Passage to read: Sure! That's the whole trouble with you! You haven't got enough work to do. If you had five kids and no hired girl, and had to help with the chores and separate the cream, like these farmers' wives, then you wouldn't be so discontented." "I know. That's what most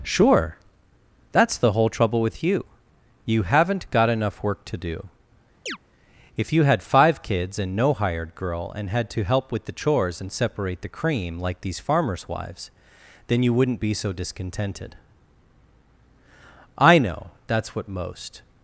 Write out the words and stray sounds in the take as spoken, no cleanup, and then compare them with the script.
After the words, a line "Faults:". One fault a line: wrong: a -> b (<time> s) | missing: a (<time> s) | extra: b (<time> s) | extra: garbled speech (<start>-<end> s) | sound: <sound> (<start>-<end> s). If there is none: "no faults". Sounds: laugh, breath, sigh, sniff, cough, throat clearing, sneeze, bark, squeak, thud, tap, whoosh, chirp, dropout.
Sure! That's the whole trouble with you! You haven't got enough work to do. If you had five kids and no hired girl, and had to help with the chores and separate the cream, like these farmers' wives, then you wouldn't be so discontented." "I know. That's what most
Faults:
sound: chirp (5.7-5.8 s)